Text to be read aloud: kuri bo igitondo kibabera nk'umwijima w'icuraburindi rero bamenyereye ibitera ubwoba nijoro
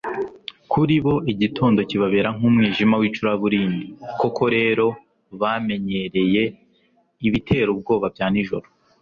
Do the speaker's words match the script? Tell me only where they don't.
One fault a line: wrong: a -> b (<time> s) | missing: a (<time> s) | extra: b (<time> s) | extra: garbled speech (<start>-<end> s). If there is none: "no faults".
extra: koko (4.2 s)
extra: bya (8.1 s)